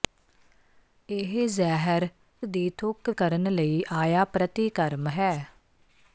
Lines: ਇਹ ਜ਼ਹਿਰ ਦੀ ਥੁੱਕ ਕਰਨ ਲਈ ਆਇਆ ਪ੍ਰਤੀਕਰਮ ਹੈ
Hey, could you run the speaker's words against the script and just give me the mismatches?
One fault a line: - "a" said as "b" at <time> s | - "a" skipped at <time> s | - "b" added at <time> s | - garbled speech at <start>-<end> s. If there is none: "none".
none